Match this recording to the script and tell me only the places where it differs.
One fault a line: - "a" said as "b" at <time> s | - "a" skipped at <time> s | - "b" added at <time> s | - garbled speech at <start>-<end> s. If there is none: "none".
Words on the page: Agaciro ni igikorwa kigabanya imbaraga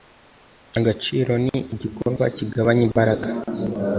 none